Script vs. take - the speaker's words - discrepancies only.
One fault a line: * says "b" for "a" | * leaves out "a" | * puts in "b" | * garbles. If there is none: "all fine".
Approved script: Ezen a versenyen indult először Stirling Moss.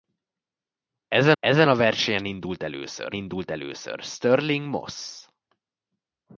* puts in "ezen"
* puts in "indult először"